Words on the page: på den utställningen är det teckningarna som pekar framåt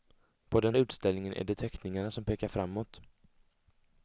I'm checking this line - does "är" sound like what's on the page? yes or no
yes